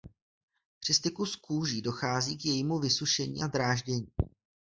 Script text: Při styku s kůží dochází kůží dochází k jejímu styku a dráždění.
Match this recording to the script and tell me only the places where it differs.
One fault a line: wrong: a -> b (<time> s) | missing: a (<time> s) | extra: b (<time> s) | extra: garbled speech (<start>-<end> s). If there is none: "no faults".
missing: kůží dochází (2.4 s)
wrong: styku -> vysušení (2.8 s)